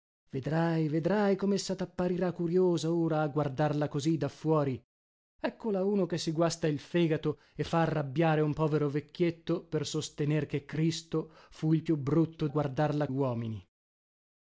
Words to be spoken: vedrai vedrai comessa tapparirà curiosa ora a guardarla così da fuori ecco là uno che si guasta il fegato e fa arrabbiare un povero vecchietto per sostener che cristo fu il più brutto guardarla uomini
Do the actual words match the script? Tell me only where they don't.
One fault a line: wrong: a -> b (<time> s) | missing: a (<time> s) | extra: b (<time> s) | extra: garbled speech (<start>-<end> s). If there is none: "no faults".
no faults